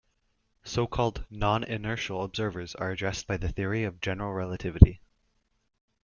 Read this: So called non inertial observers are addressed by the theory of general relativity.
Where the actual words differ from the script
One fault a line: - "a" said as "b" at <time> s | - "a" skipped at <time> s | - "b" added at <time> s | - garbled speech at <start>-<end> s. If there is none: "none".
none